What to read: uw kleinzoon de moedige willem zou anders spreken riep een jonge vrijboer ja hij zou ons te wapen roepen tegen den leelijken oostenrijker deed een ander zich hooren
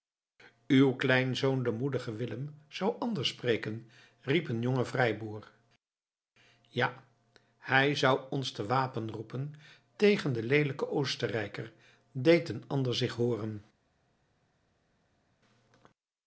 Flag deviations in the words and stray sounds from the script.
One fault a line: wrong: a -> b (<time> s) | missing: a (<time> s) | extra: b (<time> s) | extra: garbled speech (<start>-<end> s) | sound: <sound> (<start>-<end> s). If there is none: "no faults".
no faults